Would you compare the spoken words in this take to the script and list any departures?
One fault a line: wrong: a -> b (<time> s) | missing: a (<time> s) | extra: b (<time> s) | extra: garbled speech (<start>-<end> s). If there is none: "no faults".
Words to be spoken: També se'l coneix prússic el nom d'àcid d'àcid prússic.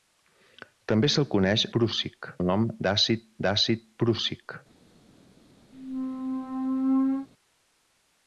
no faults